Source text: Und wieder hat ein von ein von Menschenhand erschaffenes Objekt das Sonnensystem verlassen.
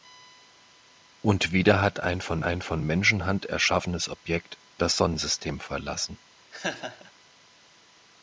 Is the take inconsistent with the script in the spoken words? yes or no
no